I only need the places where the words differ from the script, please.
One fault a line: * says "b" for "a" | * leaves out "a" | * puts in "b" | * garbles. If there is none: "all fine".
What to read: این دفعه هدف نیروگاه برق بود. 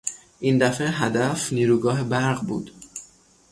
all fine